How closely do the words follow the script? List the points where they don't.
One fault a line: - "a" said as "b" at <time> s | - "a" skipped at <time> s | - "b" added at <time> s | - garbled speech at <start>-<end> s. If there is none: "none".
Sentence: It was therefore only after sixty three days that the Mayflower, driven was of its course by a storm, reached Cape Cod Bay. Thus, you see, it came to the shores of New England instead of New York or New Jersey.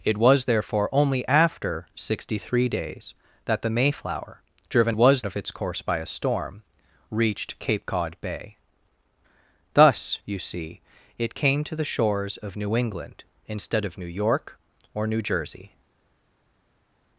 none